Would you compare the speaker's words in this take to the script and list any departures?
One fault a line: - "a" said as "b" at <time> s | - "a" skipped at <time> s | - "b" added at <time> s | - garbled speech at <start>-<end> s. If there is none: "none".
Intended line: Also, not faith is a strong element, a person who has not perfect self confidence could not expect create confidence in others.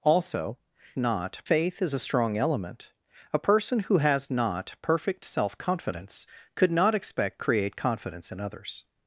none